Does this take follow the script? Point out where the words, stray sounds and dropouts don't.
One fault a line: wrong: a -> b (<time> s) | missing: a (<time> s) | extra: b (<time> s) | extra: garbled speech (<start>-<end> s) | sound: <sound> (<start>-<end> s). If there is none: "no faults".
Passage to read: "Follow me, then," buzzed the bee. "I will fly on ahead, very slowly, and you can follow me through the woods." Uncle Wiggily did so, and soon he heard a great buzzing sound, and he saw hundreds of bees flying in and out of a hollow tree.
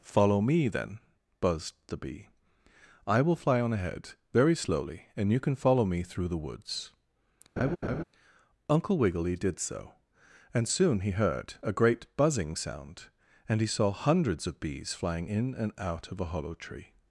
sound: laugh (7.6-8.0 s)